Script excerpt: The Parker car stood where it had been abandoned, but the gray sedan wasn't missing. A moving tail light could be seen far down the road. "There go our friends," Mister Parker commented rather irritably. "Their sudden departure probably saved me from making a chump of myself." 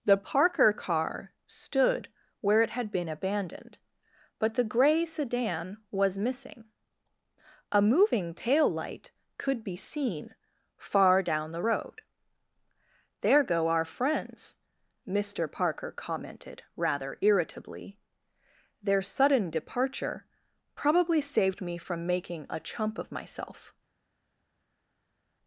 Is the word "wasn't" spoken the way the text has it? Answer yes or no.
no